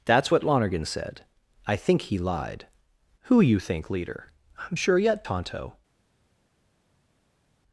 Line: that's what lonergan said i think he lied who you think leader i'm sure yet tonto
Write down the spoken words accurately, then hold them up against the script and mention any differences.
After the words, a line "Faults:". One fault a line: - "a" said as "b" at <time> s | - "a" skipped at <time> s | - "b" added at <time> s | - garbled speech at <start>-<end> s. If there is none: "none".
that's what lonergan said i think he lied who you think leader i'm sure yet tonto
Faults:
none